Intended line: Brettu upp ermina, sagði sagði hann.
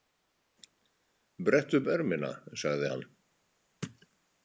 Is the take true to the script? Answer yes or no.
no